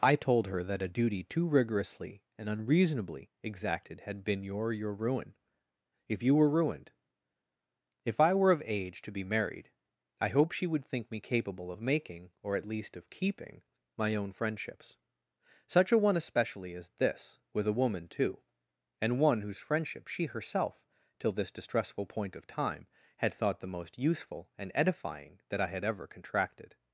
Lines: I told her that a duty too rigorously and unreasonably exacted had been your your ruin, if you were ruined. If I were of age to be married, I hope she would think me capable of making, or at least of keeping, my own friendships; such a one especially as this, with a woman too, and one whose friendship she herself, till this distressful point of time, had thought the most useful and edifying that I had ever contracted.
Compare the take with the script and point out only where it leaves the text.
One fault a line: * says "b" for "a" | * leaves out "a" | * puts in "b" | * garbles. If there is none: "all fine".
all fine